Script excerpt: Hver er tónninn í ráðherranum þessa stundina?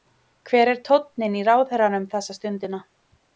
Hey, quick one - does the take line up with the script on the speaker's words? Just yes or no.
yes